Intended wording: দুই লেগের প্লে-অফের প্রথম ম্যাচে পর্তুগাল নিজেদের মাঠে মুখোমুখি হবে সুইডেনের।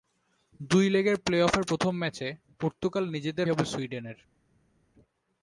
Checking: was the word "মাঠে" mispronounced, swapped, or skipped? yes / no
yes